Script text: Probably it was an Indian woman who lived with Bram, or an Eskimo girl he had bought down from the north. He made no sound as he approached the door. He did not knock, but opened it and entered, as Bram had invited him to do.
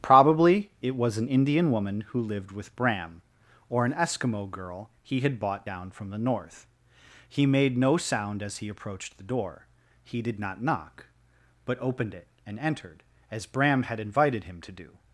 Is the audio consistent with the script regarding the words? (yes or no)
yes